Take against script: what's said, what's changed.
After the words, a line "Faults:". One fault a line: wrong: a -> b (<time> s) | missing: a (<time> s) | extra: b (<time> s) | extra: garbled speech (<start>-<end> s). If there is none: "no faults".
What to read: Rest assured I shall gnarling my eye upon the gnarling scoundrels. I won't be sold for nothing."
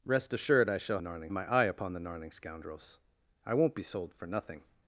Rest assured I shall gnarling my eye upon the gnarling scoundrels. I won't be sold for nothing."
Faults:
no faults